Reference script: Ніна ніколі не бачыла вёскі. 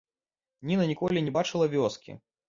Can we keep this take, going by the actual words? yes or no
yes